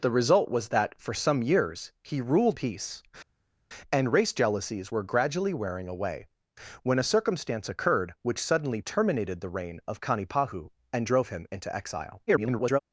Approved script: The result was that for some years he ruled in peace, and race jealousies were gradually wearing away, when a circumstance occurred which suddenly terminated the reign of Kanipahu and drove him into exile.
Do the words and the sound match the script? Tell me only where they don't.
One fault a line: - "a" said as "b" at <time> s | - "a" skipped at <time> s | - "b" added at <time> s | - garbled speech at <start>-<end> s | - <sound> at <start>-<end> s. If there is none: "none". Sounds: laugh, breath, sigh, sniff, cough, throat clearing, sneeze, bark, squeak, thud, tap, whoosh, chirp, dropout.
- "in" skipped at 2.6 s
- garbled speech at 12.3-12.8 s